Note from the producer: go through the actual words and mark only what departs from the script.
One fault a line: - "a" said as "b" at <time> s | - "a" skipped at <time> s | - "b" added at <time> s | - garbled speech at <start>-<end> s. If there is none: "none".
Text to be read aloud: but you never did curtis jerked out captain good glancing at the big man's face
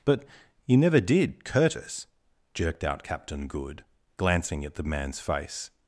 - "big" skipped at 4.8 s